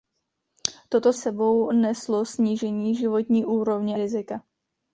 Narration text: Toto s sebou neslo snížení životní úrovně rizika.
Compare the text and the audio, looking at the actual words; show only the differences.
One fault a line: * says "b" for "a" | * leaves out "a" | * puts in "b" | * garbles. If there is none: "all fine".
all fine